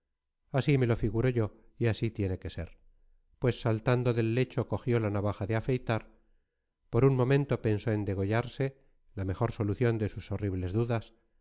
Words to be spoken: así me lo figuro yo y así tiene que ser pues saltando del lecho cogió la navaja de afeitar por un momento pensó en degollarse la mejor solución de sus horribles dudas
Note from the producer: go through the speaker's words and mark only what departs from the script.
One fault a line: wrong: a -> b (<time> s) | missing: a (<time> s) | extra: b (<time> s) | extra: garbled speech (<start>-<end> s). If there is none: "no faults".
no faults